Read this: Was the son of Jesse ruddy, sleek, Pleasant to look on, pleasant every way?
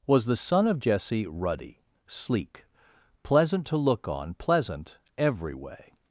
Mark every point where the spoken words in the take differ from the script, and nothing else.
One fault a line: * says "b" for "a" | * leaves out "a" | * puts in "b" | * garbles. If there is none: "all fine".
all fine